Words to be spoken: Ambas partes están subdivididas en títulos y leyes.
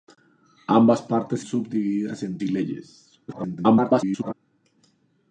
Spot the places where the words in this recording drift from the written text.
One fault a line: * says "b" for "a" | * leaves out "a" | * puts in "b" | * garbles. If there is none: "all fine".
* leaves out "están"
* leaves out "títulos"
* garbles